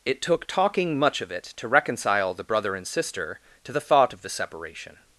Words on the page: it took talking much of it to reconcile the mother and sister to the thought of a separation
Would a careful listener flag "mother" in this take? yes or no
yes